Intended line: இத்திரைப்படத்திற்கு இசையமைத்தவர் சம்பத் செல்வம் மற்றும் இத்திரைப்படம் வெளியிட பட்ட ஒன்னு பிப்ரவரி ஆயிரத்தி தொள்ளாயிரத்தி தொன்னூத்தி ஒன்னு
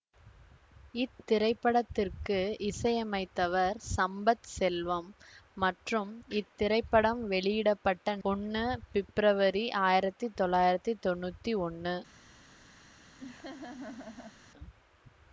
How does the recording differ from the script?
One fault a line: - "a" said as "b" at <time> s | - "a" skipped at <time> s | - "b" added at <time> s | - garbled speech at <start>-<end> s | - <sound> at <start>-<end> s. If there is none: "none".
- laugh at 13.2-14.4 s